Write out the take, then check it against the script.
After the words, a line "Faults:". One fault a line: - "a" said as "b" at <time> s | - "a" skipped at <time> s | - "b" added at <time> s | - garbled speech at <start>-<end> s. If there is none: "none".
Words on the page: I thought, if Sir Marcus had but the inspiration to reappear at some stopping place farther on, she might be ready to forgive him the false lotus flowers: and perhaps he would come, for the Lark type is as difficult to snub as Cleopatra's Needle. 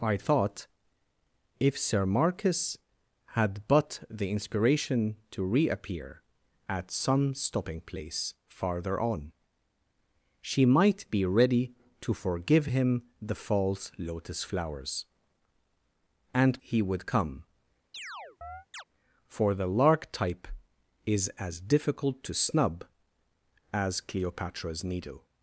I thought, if Sir Marcus had but the inspiration to reappear at some stopping place farther on, she might be ready to forgive him the false lotus flowers: and he would come, for the Lark type is as difficult to snub as Cleopatra's Needle.
Faults:
- "perhaps" skipped at 16.6 s